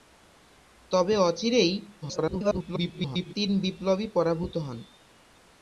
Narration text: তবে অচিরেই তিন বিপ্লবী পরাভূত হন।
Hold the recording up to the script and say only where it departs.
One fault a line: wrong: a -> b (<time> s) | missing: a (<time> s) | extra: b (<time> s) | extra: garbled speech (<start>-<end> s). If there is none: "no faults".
extra: garbled speech (2.0-3.3 s)